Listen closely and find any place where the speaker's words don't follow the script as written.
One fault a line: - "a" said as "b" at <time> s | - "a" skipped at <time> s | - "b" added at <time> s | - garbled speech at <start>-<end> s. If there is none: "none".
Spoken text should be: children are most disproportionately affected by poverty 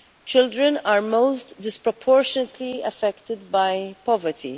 none